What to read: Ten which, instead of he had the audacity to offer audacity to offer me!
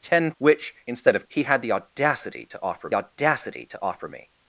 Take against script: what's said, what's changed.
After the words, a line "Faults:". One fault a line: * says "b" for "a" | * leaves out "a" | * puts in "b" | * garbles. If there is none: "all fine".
Ten which, instead of he had the audacity to offer audacity to offer me!
Faults:
all fine